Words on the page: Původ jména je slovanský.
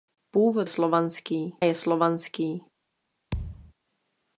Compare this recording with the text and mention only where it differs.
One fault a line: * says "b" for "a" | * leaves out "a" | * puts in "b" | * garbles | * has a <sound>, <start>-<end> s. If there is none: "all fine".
* says "slovanský" for "jména"
* has a thud, 3.3-3.7 s